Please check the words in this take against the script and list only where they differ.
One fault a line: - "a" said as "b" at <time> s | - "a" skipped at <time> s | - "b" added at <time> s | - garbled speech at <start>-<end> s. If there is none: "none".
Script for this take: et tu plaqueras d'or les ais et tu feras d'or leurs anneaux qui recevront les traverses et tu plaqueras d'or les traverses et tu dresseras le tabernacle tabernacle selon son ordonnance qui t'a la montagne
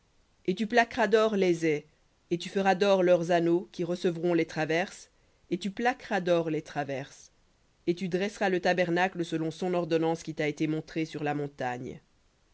- "tabernacle" skipped at 9.2 s
- "été montrée sur" added at 10.5 s